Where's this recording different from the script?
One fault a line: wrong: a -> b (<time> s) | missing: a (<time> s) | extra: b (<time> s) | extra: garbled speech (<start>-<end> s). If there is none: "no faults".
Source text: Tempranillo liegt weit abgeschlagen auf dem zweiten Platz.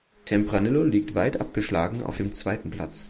no faults